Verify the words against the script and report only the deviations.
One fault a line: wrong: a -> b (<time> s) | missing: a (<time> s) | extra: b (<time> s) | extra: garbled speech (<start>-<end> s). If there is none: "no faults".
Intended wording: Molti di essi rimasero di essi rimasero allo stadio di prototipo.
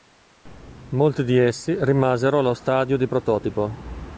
missing: di essi rimasero (2.4 s)